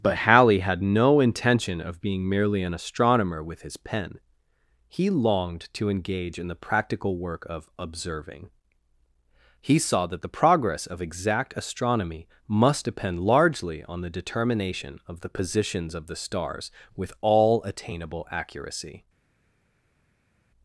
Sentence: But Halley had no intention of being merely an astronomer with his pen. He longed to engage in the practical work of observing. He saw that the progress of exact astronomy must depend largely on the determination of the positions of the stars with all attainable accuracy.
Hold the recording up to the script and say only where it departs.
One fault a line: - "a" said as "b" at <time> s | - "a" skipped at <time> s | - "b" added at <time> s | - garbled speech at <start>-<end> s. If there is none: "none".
none